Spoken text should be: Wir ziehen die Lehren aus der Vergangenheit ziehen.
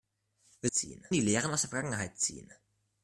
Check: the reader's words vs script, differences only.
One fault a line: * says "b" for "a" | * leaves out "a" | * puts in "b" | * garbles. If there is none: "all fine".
all fine